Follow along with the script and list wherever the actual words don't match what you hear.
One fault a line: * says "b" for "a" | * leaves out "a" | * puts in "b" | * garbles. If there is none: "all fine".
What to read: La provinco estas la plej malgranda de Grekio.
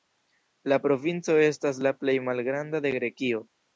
all fine